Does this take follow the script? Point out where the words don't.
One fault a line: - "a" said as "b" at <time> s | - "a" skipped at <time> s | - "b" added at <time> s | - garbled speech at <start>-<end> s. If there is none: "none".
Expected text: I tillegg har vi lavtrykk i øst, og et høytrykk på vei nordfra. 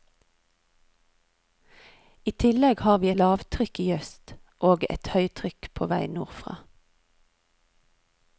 none